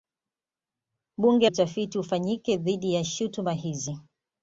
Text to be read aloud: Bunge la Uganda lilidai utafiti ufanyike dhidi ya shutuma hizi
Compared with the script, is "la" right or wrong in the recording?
wrong